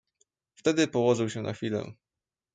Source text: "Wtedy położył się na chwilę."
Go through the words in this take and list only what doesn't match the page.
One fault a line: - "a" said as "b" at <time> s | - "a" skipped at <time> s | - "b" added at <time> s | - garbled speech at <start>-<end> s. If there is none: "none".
none